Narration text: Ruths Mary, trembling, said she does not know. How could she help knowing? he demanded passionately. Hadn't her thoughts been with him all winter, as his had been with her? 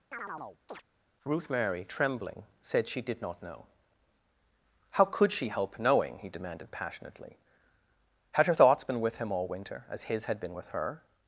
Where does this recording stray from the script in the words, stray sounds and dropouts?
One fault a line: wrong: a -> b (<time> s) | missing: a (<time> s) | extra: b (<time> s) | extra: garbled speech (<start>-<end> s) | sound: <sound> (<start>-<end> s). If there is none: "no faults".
sound: chirp (0.1-0.8 s)
wrong: Ruths -> Ruth (1.3 s)
wrong: does -> did (3.0 s)
wrong: Hadn't -> Had (8.3 s)